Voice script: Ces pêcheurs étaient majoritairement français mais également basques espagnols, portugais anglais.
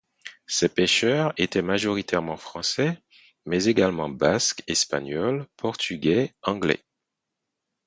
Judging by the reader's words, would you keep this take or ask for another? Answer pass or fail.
pass